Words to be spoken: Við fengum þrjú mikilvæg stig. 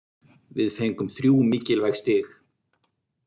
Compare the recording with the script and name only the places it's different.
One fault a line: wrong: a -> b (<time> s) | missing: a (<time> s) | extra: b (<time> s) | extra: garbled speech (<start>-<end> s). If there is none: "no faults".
no faults